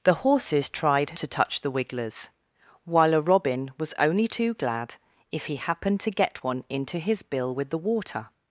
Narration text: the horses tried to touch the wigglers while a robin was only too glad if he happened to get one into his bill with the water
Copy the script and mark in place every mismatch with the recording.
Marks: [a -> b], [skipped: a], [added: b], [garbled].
the horses tried to touch the wigglers while a robin was only too glad if he happened to get one into his bill with the water